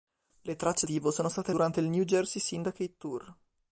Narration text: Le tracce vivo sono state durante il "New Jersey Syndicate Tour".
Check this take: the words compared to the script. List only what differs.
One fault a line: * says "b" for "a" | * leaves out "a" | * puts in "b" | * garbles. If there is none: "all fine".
all fine